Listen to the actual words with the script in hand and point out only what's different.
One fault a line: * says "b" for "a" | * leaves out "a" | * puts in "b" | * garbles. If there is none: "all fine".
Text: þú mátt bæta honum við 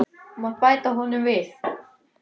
all fine